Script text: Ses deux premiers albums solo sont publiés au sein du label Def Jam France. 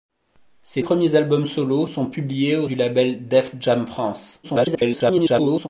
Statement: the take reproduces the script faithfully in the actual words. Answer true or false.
false